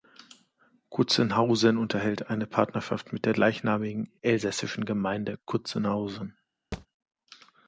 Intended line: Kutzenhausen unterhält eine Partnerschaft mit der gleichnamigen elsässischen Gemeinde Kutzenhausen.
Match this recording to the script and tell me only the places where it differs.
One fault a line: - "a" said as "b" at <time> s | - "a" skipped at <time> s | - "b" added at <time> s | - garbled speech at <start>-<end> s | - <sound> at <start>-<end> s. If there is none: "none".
- thud at 6.7-6.9 s